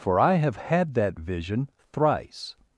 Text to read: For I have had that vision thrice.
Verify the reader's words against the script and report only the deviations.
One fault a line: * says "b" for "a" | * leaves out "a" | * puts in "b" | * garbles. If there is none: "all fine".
all fine